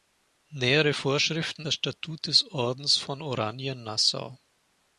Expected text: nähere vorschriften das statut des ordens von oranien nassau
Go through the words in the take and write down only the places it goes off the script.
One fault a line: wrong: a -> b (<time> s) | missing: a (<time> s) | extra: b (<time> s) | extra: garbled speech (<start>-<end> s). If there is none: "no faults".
no faults